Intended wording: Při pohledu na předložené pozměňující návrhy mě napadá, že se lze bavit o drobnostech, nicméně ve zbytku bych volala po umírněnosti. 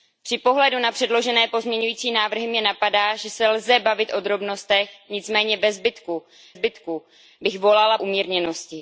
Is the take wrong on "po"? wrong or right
wrong